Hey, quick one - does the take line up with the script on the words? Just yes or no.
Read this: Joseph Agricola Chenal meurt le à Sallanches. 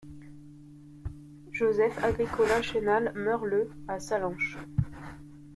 yes